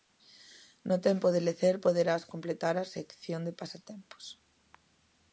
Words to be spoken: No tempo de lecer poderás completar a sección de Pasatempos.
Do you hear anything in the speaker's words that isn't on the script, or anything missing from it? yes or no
no